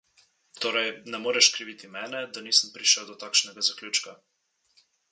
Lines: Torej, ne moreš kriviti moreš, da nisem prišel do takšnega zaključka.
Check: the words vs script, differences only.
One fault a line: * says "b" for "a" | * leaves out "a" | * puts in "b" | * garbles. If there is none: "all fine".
* says "mene" for "moreš"